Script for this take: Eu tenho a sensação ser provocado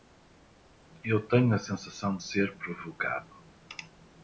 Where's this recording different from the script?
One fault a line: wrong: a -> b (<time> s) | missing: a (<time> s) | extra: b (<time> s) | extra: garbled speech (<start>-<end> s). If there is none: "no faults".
no faults